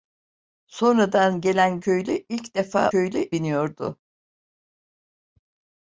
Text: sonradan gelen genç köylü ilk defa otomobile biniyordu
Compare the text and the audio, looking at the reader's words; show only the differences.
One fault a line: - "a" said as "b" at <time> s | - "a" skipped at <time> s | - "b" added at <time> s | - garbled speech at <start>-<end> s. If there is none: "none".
- "genç" skipped at 1.8 s
- "otomobile" said as "köylü" at 2.9 s